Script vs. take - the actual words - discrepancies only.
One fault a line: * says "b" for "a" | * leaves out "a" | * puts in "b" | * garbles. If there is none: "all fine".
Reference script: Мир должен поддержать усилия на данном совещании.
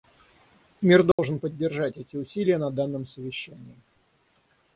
* puts in "эти"